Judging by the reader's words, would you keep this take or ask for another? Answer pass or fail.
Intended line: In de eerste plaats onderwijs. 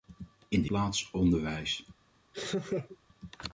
fail